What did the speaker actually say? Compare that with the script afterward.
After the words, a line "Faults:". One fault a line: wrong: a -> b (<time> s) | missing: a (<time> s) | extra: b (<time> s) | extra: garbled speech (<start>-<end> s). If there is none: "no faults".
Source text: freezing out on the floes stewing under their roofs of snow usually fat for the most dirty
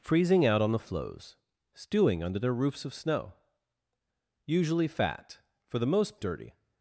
freezing out on the floes stewing under their roofs of snow usually fat for the most dirty
Faults:
no faults